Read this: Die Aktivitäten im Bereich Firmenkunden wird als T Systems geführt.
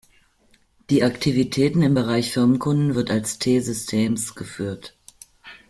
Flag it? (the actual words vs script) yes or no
no